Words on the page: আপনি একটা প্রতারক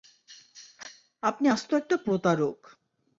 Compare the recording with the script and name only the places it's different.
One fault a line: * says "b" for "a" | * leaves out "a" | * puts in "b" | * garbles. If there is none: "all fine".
* puts in "আস্ত"